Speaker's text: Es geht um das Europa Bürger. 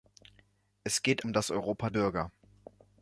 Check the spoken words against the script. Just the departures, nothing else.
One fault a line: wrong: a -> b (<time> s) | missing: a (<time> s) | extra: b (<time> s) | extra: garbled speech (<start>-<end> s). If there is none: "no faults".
no faults